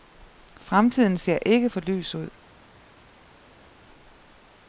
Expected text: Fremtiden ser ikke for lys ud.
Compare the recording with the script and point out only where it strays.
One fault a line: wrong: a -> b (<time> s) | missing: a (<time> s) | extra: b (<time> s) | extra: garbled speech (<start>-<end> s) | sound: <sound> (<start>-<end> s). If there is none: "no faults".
no faults